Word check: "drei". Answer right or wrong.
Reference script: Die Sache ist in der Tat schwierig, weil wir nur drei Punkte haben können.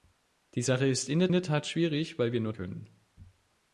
wrong